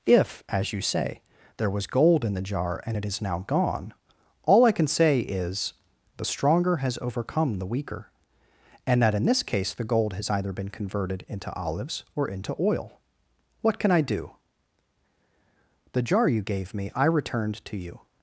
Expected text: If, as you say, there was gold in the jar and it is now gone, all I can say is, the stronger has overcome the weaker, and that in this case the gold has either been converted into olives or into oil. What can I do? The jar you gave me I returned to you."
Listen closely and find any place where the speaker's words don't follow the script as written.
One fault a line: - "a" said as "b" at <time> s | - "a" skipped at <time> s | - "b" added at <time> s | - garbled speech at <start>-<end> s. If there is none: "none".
none